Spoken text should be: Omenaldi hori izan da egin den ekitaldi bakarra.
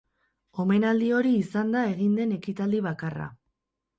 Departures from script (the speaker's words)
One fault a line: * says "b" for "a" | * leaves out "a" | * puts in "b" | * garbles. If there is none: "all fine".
all fine